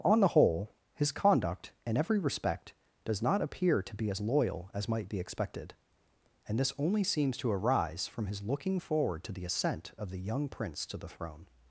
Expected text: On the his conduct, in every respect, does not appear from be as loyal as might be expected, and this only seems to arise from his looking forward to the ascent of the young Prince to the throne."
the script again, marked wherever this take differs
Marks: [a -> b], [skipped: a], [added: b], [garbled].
On the [added: whole] his conduct, in every respect, does not appear [from -> to] be as loyal as might be expected, and this only seems to arise from his looking forward to the ascent of the young Prince to the throne."